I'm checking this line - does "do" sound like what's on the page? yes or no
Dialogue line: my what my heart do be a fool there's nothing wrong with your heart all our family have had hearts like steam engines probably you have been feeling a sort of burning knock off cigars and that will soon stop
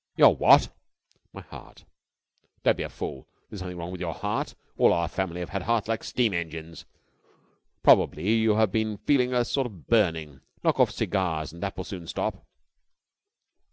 no